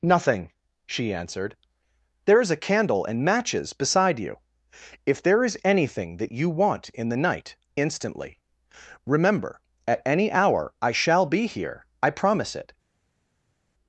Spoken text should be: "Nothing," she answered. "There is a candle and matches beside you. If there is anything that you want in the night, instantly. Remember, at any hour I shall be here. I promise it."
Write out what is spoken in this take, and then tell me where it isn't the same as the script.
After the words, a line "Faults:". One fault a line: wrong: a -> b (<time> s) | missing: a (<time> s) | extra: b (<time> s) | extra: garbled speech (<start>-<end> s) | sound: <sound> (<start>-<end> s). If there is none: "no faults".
"Nothing," she answered. "There is a candle and matches beside you. If there is anything that you want in the night, instantly. Remember, at any hour I shall be here. I promise it."
Faults:
no faults